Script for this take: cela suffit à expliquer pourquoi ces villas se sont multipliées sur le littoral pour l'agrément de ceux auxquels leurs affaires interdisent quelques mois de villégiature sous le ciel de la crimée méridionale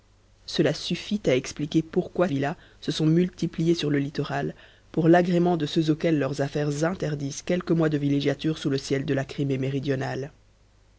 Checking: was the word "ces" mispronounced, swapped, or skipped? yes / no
yes